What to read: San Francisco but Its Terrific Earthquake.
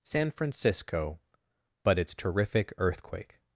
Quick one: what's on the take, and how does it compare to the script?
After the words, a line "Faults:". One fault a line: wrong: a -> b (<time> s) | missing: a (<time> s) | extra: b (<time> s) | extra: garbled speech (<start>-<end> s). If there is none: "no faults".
San Francisco but Its Terrific Earthquake.
Faults:
no faults